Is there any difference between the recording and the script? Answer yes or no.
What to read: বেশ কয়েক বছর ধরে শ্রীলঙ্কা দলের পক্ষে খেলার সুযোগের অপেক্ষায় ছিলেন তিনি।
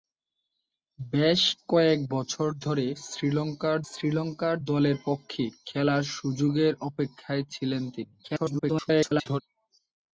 yes